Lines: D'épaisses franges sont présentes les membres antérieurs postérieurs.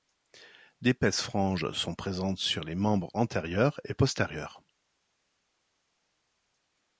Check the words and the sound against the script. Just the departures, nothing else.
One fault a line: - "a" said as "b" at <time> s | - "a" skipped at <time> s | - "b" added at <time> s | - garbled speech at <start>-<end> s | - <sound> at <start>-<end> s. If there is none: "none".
- "sur" added at 2.4 s
- "et" added at 3.8 s